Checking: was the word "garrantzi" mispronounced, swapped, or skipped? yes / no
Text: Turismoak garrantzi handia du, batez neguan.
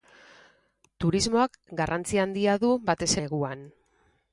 no